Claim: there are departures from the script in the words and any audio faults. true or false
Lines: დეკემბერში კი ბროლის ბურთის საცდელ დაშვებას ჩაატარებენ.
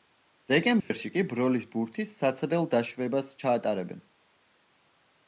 true